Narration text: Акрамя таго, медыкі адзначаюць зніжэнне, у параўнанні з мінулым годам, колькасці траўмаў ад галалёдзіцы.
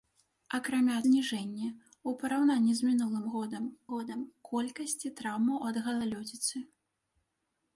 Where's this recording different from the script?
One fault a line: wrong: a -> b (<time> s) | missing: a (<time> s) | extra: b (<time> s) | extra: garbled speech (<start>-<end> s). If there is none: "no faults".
missing: таго медыкі адзначаюць (0.9 s)
extra: годам (3.9 s)